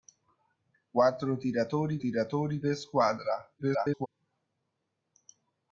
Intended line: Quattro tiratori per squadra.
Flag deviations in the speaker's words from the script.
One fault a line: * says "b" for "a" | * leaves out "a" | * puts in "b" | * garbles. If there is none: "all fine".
* puts in "tiratori"
* garbles